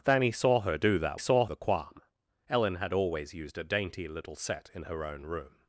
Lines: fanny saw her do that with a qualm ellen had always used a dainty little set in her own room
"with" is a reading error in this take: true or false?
true